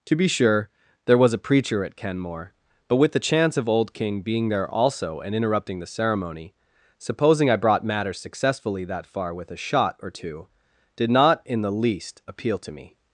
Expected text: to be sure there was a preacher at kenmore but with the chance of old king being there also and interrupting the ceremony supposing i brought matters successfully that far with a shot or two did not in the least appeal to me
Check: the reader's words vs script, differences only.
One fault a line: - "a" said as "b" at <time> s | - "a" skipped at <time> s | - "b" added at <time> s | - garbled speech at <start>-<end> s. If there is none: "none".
none